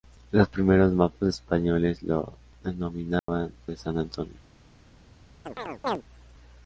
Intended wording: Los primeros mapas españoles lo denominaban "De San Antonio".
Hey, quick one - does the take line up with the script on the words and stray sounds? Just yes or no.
no